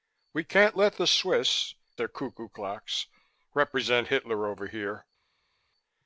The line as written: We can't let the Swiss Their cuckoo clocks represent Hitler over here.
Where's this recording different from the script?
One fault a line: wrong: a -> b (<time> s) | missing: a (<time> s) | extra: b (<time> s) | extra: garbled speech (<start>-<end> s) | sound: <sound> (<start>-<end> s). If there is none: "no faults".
no faults